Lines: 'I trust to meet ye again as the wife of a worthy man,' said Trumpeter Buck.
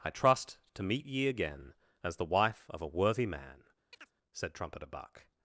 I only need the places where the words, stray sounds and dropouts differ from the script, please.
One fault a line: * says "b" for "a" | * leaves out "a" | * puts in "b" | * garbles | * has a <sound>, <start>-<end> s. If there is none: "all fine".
* has a chirp, 3.9-4.1 s